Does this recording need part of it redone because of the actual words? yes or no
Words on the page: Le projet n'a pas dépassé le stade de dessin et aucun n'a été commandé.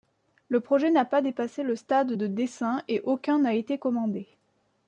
no